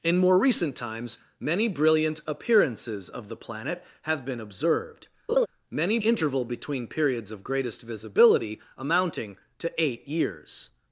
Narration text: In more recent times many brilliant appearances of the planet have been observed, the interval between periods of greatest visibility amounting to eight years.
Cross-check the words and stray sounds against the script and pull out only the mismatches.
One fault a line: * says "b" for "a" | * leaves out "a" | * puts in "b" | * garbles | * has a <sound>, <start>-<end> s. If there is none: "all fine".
* has a laugh, 5.3-5.5 s
* says "many" for "the"